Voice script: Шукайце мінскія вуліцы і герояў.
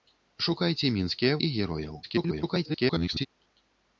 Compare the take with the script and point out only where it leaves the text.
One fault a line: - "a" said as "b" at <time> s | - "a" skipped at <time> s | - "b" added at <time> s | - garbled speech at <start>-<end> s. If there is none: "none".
- "вуліцы" skipped at 1.4 s
- garbled speech at 2.0-3.3 s